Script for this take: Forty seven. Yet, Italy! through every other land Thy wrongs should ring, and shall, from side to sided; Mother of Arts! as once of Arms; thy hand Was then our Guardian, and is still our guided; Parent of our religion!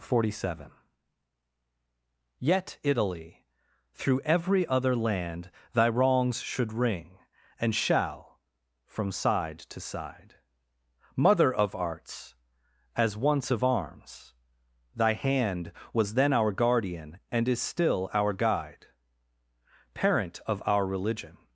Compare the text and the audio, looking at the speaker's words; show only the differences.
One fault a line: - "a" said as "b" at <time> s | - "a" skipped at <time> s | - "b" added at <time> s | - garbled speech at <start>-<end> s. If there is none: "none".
- "sided" said as "side" at 9.8 s
- "guided" said as "guide" at 18.3 s